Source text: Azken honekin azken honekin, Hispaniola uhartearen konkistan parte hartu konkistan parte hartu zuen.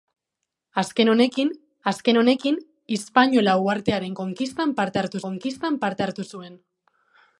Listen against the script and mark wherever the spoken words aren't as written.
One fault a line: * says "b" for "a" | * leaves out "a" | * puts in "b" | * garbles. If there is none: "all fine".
all fine